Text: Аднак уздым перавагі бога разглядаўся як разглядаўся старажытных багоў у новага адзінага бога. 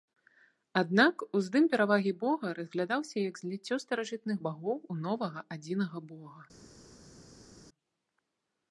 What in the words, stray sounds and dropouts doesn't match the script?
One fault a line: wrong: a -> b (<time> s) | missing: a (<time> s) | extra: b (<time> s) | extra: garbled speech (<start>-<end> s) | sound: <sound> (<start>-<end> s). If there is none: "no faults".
wrong: разглядаўся -> зліццё (3.4 s)